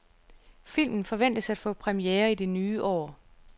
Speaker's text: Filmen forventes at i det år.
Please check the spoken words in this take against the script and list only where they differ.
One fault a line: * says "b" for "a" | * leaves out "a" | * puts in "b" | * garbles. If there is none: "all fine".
* puts in "få premiere"
* puts in "nye"